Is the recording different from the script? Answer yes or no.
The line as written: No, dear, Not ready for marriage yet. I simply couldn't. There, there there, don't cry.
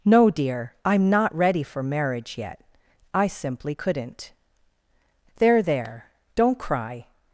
yes